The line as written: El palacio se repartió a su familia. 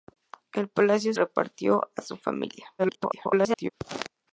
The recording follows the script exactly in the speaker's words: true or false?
false